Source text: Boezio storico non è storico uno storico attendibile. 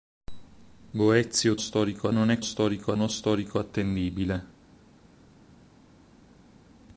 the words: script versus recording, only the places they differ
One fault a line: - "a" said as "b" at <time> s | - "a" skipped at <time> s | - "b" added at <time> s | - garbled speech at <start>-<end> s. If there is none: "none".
none